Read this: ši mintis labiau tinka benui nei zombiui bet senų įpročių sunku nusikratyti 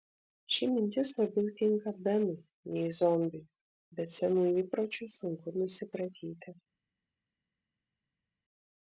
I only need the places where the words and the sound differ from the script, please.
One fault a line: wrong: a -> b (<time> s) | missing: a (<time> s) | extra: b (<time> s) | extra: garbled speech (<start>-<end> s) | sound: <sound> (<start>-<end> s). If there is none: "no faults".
no faults